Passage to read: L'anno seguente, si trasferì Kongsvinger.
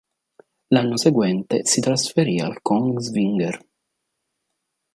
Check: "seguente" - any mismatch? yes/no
no